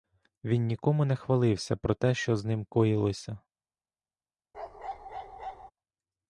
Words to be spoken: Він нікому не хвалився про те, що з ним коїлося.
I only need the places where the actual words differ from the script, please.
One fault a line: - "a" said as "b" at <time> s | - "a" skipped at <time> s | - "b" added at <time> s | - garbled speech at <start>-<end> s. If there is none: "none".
none